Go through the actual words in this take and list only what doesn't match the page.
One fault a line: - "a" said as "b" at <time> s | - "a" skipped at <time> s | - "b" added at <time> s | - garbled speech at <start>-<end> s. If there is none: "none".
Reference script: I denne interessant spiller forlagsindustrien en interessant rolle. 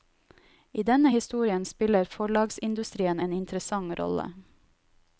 - "interessant" said as "historien" at 1.1 s